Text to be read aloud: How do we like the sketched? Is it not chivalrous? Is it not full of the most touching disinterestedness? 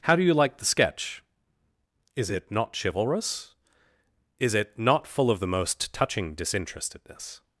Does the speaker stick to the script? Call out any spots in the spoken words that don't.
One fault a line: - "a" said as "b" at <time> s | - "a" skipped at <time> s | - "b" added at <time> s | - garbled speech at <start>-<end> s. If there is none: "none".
- "we" said as "you" at 0.2 s
- "sketched" said as "sketch" at 0.7 s